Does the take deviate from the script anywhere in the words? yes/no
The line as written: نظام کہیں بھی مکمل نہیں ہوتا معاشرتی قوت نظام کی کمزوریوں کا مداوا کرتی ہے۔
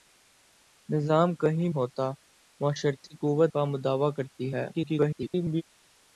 yes